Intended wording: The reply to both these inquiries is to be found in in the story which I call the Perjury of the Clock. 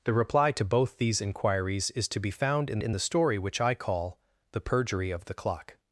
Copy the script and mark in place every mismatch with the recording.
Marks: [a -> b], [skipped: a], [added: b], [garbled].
The reply to both these inquiries is to be found in in the story which I call the Perjury of the Clock.